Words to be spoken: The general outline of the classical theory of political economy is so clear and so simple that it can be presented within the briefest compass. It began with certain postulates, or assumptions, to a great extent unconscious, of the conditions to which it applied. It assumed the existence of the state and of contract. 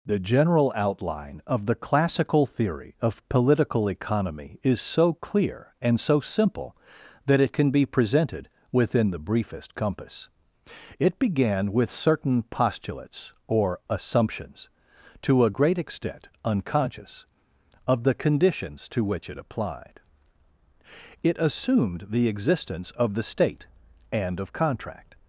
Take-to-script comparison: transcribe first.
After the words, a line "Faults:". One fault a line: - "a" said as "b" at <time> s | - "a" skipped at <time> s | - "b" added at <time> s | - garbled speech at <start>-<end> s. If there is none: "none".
The general outline of the classical theory of political economy is so clear and so simple that it can be presented within the briefest compass. It began with certain postulates, or assumptions, to a great extent unconscious, of the conditions to which it applied. It assumed the existence of the state and of contract.
Faults:
none